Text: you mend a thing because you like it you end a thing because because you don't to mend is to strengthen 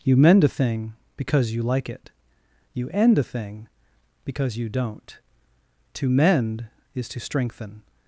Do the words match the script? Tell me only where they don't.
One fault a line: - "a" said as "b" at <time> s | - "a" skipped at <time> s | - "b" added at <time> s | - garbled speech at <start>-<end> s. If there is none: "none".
- "because" skipped at 4.6 s